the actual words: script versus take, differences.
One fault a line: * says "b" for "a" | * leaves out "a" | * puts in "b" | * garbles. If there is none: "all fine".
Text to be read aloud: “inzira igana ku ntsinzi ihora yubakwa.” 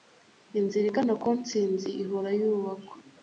all fine